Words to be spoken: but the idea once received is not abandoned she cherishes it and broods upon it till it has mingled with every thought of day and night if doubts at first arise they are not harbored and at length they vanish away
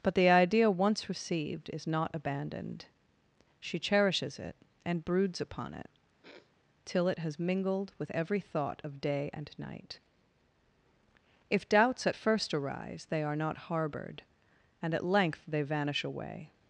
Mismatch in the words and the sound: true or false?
true